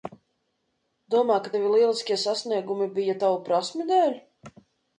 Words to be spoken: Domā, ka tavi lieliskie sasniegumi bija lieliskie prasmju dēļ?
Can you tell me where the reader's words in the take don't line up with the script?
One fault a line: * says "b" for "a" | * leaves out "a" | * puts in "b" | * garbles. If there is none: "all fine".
* says "tavu" for "lieliskie"